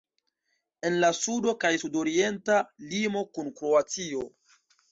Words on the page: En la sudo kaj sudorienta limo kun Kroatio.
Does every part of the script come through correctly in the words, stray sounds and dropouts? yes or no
yes